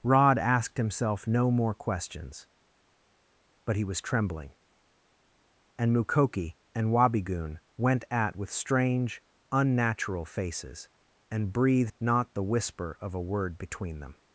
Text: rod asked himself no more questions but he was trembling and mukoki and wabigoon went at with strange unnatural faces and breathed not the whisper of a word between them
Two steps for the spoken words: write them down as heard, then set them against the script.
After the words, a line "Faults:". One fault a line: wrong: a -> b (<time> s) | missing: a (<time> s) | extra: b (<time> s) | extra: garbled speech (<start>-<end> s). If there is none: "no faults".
rod asked himself no more questions but he was trembling and mukoki and wabigoon went at with strange unnatural faces and breathed not the whisper of a word between them
Faults:
no faults